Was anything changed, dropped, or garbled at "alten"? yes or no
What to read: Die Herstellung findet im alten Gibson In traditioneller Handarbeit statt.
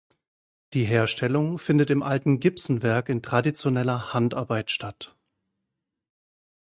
no